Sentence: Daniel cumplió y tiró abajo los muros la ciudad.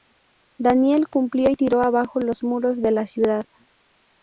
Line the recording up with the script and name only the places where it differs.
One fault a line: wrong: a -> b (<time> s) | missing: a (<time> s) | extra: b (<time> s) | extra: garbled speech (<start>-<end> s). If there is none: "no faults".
extra: de (2.8 s)